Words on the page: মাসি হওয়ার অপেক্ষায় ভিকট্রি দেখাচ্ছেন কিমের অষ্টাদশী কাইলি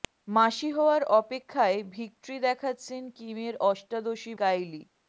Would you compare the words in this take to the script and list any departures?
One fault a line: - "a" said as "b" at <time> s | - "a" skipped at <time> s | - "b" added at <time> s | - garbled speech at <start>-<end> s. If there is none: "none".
none